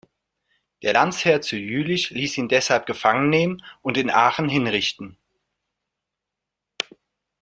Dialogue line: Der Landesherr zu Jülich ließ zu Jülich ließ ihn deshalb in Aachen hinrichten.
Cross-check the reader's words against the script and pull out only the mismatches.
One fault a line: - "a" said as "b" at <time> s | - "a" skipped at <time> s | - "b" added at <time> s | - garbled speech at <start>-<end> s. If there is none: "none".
- "zu Jülich ließ ihn deshalb" said as "ihn deshalb gefangen nehmen und" at 2.4 s